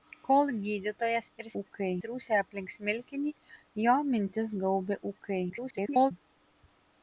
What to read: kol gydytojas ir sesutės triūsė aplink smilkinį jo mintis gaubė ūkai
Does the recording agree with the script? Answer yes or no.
no